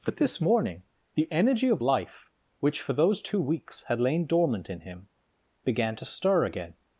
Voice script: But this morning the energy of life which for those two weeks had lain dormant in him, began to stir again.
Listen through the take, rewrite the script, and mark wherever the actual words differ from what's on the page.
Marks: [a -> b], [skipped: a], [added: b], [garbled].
But this morning the energy of life which for those two weeks had lain dormant in him, began to stir again.